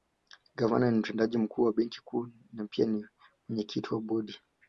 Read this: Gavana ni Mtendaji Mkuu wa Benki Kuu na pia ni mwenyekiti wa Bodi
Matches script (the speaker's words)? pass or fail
pass